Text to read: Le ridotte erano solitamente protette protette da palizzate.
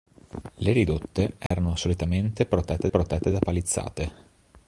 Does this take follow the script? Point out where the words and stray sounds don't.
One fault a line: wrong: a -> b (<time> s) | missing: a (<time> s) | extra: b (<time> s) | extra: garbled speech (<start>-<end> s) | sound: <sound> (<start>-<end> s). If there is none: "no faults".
sound: dropout (1.5-1.5 s)